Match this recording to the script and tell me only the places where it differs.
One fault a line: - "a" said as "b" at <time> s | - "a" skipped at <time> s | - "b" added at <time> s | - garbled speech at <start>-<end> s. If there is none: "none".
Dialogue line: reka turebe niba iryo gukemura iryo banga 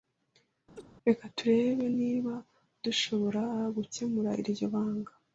- "iryo" said as "dushobora" at 2.8 s